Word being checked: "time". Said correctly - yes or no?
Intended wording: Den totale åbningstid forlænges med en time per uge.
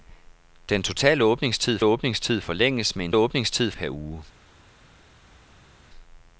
no